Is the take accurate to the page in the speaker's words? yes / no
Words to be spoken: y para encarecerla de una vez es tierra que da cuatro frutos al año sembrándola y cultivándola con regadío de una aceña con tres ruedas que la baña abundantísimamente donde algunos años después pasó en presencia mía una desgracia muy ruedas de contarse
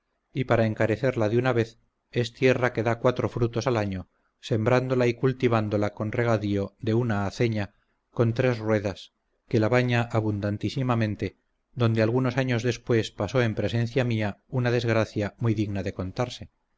no